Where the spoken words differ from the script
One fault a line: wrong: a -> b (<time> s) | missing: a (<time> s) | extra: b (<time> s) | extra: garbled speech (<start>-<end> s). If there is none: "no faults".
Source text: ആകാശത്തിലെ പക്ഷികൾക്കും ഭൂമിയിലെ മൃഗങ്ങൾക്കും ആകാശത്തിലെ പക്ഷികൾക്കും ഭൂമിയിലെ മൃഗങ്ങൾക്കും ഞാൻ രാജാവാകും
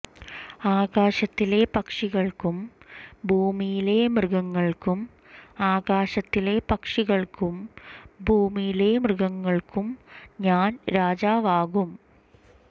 no faults